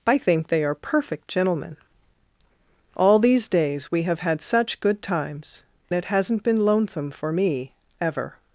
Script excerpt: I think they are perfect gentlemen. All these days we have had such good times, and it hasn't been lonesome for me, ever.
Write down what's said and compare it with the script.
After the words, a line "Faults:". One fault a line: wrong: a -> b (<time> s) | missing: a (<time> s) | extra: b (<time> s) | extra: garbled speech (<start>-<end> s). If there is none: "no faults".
I think they are perfect gentlemen. All these days we have had such good times, it hasn't been lonesome for me, ever.
Faults:
missing: and (5.6 s)